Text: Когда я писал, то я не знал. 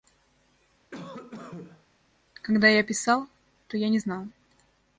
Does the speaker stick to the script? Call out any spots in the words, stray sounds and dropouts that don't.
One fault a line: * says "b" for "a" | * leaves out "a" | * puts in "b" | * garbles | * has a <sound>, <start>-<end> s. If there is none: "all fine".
* has a cough, 0.9-1.9 s